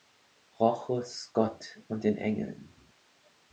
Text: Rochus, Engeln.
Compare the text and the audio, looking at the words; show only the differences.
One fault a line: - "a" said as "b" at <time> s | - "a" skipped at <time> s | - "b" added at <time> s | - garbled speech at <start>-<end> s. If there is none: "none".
- "Gott und den" added at 1.3 s